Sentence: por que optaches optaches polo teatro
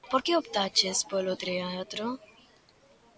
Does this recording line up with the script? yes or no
no